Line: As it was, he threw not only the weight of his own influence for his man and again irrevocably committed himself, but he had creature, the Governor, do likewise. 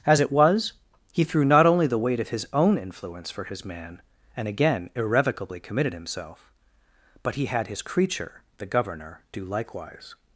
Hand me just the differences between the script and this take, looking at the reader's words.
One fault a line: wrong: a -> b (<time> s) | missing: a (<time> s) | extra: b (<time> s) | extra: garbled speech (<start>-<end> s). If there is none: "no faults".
extra: his (7.7 s)